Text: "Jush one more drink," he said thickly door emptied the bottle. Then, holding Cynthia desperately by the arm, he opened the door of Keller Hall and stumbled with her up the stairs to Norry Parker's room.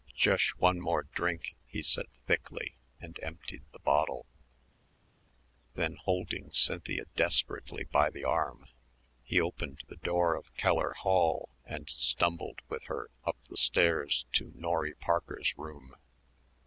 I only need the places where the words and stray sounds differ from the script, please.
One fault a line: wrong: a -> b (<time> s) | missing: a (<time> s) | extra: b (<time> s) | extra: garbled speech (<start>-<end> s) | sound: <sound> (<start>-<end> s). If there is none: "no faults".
wrong: door -> and (3.0 s)